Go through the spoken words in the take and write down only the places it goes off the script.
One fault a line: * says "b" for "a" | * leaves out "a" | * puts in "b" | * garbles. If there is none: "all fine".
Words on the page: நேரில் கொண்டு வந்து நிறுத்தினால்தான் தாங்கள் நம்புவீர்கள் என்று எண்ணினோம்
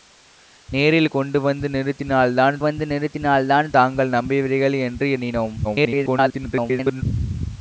* puts in "வந்து நிறுத்தினால்தான்"
* garbles